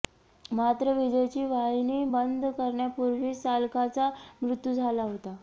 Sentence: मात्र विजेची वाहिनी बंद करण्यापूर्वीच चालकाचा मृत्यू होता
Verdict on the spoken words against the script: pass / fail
fail